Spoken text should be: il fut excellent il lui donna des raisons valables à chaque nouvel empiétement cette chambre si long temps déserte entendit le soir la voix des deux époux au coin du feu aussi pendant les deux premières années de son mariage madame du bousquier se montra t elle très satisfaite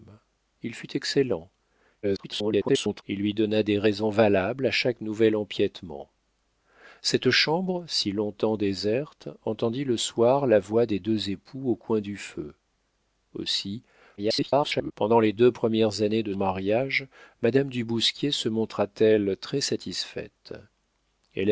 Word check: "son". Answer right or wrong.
wrong